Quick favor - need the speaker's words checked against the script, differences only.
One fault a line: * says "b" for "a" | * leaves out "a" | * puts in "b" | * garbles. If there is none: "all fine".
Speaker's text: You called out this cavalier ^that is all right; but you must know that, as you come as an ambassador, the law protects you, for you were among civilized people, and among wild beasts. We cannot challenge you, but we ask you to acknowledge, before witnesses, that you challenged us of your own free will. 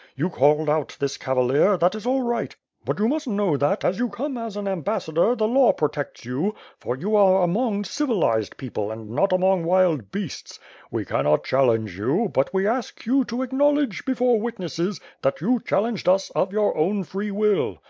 * says "are" for "were"
* puts in "not"